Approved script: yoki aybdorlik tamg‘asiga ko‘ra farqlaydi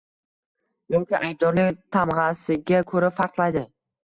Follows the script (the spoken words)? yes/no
yes